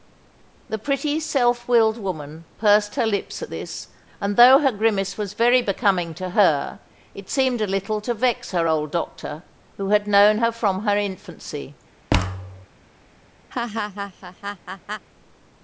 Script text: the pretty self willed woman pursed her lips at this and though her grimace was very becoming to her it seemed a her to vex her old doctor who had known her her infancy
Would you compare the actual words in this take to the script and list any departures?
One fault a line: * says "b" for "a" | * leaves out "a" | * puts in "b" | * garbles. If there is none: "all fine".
* says "little" for "her"
* puts in "from"